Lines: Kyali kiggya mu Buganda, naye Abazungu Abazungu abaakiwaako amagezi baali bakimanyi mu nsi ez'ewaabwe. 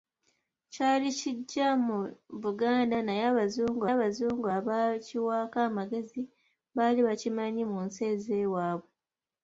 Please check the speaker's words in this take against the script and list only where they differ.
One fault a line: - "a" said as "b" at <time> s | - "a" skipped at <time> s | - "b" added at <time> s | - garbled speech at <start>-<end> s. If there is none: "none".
none